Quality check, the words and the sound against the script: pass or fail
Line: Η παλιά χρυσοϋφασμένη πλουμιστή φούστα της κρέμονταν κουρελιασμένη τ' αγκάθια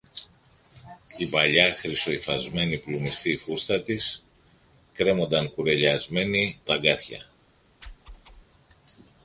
fail